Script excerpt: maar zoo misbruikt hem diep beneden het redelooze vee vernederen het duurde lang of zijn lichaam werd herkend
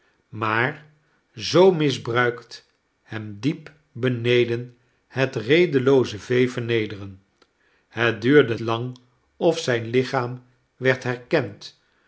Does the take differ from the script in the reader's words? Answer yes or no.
no